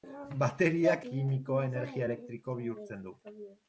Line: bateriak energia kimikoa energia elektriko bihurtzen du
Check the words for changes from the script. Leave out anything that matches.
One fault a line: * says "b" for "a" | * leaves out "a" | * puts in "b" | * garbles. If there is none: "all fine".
* leaves out "energia"